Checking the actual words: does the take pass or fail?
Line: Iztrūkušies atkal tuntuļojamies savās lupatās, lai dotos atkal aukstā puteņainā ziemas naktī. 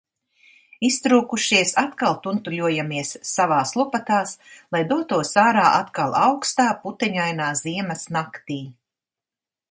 fail